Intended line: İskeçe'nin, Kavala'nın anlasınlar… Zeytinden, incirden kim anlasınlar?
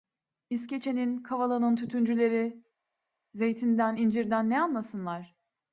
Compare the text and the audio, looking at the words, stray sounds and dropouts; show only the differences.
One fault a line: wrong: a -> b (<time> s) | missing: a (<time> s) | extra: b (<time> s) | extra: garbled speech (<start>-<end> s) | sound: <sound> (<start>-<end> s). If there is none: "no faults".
wrong: anlasınlar -> tütüncüleri (1.7 s)
wrong: kim -> ne (4.5 s)